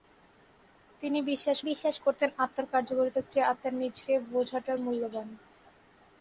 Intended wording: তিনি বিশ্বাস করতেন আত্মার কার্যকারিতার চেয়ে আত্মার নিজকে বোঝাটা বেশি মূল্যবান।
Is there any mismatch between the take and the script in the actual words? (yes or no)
yes